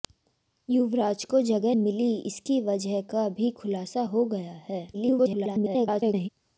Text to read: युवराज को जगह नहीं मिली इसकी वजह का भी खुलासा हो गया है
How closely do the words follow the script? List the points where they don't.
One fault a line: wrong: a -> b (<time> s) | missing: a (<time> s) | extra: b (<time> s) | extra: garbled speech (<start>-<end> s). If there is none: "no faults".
missing: नहीं (1.8 s)
extra: garbled speech (4.9-6.3 s)